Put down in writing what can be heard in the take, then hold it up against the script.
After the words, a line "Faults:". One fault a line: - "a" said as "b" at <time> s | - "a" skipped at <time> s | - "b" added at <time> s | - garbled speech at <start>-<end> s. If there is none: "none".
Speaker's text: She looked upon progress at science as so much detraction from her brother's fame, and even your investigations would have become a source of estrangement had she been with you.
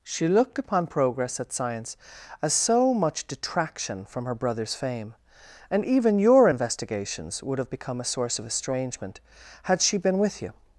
She looked upon progress at science as so much detraction from her brother's fame, and even your investigations would have become a source of estrangement had she been with you.
Faults:
none